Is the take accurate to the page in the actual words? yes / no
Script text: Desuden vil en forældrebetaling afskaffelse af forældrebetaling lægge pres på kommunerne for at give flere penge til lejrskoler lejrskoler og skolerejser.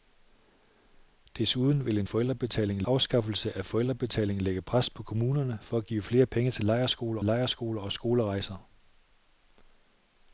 yes